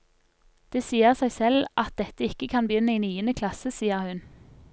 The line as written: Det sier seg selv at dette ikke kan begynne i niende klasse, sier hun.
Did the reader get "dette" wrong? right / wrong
right